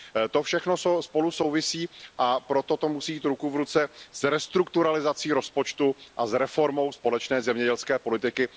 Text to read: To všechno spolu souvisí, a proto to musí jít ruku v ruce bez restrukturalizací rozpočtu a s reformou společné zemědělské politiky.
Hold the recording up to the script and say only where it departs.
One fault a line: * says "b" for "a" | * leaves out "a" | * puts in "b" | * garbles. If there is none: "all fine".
* says "s" for "bez"